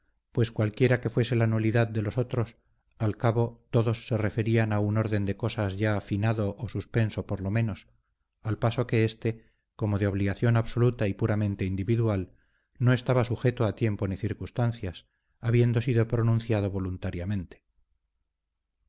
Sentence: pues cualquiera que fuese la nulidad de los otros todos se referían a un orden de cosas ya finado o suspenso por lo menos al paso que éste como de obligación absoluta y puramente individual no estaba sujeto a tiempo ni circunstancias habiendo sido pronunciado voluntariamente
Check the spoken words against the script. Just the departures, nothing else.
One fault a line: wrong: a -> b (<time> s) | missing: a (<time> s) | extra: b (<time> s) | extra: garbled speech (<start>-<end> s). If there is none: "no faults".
extra: al cabo (3.0 s)